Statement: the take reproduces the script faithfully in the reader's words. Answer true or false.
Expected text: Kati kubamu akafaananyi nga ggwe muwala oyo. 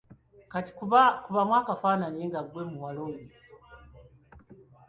true